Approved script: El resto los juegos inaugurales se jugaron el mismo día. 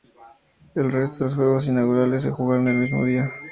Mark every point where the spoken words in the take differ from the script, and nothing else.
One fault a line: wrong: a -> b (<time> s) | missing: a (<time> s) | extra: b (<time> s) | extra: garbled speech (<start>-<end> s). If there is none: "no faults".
no faults